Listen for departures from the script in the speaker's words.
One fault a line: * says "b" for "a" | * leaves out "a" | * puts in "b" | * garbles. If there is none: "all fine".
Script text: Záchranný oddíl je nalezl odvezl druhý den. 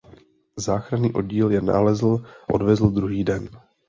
all fine